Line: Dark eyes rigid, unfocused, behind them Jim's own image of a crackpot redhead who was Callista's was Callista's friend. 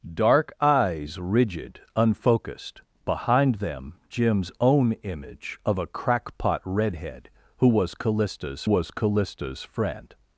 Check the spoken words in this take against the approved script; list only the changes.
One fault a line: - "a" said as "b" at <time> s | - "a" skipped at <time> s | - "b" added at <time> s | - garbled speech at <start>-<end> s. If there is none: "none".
none